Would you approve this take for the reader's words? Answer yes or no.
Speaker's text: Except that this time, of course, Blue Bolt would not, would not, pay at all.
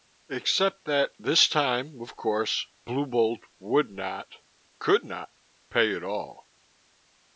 no